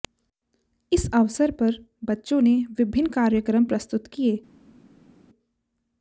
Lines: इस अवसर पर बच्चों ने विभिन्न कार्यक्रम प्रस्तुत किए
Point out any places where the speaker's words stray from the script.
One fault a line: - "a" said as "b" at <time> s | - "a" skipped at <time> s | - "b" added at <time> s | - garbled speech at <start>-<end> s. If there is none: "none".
none